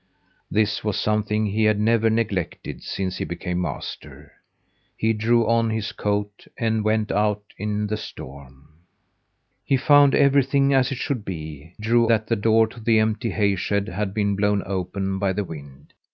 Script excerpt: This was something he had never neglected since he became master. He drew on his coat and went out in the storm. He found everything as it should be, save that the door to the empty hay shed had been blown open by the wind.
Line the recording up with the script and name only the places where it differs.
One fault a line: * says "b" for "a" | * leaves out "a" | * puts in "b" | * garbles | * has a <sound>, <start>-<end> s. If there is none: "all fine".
* says "drew" for "save"